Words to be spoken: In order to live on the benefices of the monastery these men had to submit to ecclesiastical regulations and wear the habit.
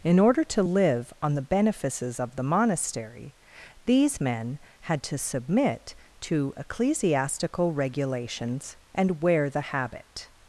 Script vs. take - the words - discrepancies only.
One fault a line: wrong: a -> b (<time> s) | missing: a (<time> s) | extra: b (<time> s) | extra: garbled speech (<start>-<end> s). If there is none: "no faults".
no faults